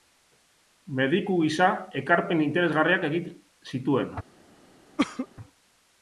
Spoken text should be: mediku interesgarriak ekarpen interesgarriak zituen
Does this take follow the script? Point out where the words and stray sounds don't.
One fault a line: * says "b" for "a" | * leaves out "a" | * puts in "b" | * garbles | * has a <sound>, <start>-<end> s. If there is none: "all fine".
* says "gisa" for "interesgarriak"
* puts in "egin"
* has a cough, 5.0-5.3 s